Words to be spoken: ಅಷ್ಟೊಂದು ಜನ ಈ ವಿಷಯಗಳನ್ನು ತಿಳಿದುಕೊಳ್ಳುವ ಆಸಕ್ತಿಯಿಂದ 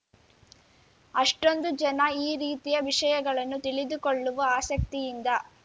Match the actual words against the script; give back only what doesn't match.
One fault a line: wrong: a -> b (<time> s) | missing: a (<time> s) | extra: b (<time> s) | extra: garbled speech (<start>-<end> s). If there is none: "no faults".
extra: ರೀತಿಯ (2.4 s)